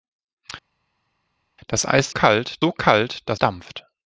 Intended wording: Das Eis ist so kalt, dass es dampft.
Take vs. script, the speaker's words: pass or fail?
fail